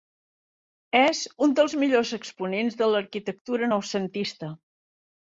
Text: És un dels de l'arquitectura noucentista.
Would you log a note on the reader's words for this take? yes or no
yes